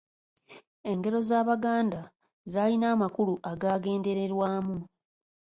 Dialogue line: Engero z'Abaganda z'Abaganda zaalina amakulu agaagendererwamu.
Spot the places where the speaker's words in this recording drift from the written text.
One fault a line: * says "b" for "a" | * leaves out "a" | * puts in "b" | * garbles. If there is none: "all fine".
* leaves out "z'Abaganda"